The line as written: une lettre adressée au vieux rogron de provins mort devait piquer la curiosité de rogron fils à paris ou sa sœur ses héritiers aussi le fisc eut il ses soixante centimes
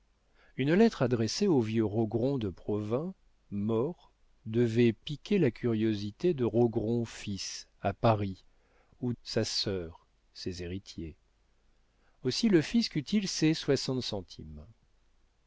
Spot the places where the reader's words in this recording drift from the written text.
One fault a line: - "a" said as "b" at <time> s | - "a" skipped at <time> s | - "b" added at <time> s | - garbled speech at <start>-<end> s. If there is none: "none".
none